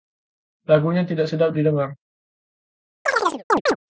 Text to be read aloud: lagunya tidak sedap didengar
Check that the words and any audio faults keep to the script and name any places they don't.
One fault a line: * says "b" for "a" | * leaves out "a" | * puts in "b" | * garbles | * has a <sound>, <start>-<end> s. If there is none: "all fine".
* has a chirp, 3.1-3.8 s